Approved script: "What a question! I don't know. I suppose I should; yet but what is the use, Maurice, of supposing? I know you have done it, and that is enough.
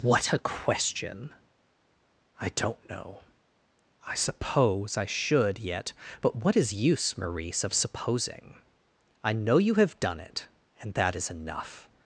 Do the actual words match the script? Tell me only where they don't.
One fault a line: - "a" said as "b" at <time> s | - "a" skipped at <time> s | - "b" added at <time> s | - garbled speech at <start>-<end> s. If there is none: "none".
- "the" skipped at 6.7 s